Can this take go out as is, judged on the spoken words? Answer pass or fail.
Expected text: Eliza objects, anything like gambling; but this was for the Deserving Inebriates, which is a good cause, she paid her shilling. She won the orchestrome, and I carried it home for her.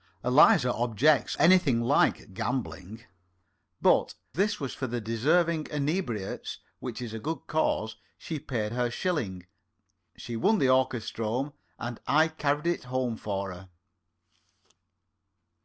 pass